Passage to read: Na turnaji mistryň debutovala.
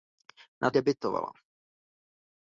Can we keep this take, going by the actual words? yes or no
no